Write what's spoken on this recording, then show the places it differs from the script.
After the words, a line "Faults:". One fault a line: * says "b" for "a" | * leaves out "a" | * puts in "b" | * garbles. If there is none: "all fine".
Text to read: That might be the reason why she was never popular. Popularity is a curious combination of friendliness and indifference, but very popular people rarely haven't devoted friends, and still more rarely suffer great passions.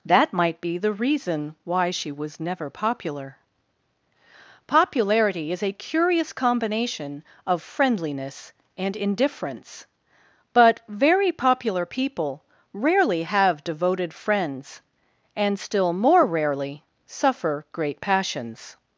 That might be the reason why she was never popular. Popularity is a curious combination of friendliness and indifference, but very popular people rarely have devoted friends, and still more rarely suffer great passions.
Faults:
* says "have" for "haven't"